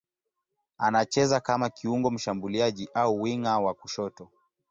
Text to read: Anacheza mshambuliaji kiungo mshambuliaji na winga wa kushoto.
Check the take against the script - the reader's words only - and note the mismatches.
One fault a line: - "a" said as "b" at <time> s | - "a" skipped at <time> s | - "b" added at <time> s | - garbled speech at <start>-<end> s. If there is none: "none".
- "mshambuliaji" said as "kama" at 1.4 s
- "na" said as "au" at 2.9 s